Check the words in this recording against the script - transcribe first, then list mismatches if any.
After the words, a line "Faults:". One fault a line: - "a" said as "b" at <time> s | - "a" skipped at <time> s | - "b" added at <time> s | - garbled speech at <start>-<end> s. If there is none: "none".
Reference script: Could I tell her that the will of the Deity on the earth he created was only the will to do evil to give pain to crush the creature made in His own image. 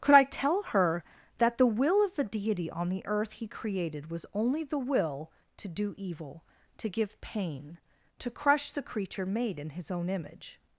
Could I tell her that the will of the Deity on the earth he created was only the will to do evil to give pain to crush the creature made in His own image.
Faults:
none